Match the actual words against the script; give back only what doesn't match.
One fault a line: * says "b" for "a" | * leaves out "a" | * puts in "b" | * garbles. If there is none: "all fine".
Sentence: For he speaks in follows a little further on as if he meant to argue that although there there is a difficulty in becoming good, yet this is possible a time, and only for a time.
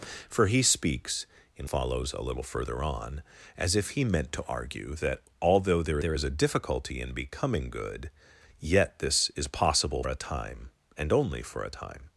all fine